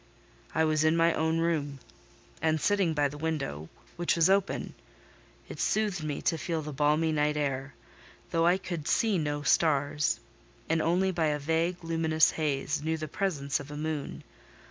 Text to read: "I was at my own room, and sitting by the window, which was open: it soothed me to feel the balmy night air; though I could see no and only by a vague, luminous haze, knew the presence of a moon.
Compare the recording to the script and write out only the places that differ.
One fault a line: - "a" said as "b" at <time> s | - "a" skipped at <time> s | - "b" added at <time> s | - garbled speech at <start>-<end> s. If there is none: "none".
- "at" said as "in" at 0.8 s
- "stars" added at 9.4 s